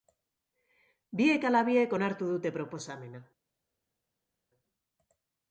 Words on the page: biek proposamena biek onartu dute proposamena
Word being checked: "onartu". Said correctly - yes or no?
yes